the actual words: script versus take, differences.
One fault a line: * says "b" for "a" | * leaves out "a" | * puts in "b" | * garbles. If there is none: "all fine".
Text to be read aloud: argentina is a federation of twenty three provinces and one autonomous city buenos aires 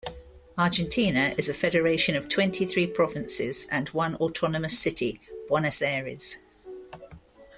all fine